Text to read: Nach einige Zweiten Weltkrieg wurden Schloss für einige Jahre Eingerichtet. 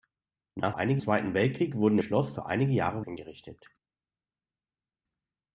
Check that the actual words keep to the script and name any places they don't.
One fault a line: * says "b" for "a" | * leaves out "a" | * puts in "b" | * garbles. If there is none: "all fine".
all fine